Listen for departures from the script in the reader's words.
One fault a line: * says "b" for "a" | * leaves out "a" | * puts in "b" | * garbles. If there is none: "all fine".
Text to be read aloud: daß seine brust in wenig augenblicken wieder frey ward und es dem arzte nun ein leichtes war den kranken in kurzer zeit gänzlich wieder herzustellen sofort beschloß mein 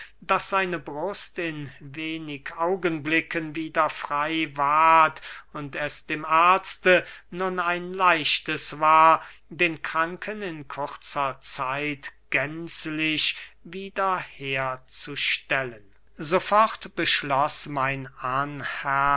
all fine